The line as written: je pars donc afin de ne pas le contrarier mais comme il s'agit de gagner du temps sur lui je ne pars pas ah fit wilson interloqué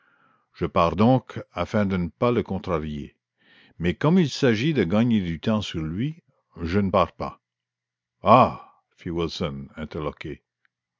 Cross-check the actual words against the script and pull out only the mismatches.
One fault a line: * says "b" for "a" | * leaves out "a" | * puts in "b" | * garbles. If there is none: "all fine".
all fine